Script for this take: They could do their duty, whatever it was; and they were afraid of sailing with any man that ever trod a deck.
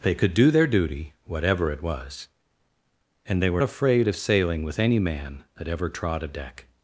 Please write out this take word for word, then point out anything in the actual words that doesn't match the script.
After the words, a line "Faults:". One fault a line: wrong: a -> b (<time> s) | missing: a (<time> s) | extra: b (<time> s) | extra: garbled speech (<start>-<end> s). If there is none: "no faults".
They could do their duty, whatever it was; and they were afraid of sailing with any man that ever trod a deck.
Faults:
no faults